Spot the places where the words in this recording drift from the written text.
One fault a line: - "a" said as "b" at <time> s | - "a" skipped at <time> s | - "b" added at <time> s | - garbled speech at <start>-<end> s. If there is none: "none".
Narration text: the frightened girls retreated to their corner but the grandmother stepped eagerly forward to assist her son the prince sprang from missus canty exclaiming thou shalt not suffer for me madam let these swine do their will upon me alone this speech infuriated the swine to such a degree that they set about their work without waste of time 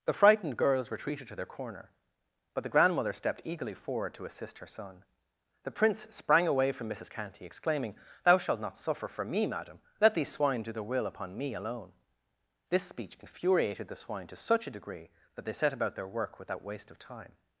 - "away" added at 6.5 s